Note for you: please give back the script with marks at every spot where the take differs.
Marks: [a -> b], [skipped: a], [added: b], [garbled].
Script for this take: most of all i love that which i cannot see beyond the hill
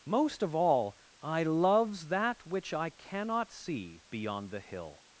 most of all i [love -> loves] that which i cannot see beyond the hill